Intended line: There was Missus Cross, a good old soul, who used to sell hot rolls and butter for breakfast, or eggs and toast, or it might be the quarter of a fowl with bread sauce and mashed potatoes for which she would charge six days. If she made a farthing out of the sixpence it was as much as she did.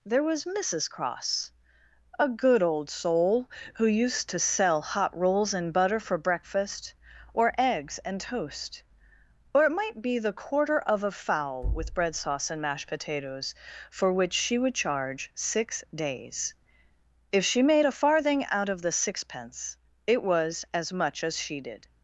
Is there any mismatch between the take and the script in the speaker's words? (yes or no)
no